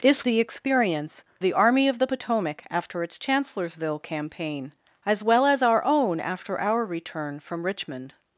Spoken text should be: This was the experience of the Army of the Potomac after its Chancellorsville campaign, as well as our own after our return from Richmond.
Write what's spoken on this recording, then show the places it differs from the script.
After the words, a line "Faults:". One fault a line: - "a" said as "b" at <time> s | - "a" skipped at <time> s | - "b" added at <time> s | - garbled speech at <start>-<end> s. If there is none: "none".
This the experience the Army of the Potomac after its Chancellorsville campaign, as well as our own after our return from Richmond.
Faults:
- "was" skipped at 0.2 s
- "of" skipped at 1.2 s